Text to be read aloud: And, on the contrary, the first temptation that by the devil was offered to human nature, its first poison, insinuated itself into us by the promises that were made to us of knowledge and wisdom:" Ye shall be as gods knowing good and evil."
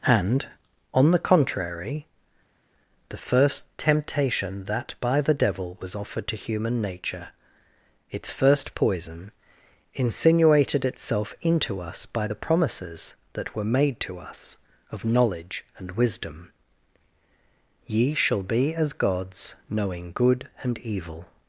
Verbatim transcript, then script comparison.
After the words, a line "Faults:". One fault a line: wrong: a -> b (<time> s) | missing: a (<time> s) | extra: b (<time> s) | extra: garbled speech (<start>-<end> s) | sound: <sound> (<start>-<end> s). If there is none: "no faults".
And, on the contrary, the first temptation that by the devil was offered to human nature, its first poison, insinuated itself into us by the promises that were made to us of knowledge and wisdom:" Ye shall be as gods knowing good and evil."
Faults:
no faults